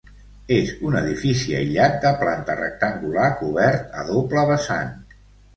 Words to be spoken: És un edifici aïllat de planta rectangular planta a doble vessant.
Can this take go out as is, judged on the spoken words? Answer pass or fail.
fail